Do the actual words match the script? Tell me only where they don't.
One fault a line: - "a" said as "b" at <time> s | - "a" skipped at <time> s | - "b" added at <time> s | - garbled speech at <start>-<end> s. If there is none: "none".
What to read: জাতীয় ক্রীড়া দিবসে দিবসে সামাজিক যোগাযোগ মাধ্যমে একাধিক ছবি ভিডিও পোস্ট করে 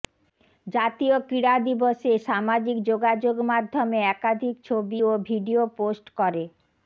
- "দিবসে" skipped at 2.1 s
- "ও" added at 5.0 s